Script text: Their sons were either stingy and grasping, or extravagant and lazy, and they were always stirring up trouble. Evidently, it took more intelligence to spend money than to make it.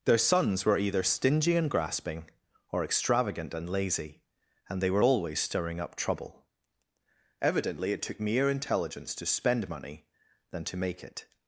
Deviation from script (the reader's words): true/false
true